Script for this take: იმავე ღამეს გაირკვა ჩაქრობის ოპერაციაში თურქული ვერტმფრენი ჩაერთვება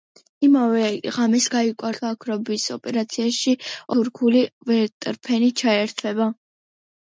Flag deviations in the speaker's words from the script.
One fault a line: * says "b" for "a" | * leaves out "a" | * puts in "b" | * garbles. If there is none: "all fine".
all fine